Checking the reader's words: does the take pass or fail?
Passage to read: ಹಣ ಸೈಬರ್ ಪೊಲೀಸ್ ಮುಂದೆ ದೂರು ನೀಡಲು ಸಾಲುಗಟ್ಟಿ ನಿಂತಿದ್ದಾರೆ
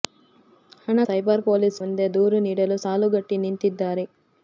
pass